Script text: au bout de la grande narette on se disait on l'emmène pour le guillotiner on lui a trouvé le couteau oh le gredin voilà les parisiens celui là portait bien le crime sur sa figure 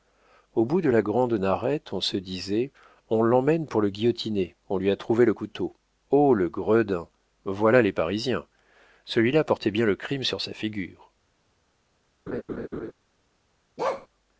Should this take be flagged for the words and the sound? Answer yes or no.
yes